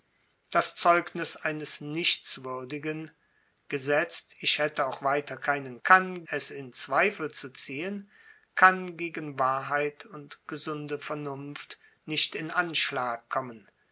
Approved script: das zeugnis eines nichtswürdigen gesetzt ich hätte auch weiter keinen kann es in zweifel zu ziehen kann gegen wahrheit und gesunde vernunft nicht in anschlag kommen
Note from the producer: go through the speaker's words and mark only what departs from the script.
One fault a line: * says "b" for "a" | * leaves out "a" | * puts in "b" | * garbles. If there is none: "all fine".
all fine